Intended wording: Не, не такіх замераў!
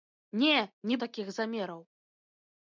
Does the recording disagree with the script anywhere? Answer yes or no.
no